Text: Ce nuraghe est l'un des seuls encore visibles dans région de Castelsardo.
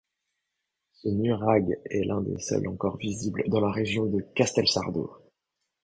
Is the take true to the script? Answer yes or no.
no